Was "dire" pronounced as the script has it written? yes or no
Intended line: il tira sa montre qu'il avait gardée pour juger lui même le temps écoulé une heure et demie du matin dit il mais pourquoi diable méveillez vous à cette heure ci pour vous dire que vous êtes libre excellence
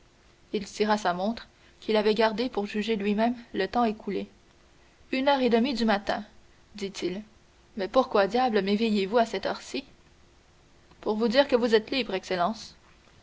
yes